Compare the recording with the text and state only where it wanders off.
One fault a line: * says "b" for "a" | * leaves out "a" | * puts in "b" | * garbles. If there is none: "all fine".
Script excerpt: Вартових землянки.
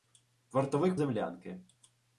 all fine